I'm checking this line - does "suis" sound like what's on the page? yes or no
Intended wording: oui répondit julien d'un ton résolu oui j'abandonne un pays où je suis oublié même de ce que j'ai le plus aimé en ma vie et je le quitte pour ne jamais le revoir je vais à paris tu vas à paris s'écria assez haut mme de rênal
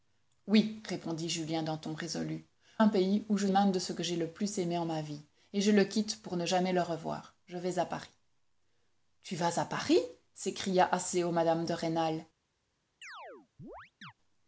no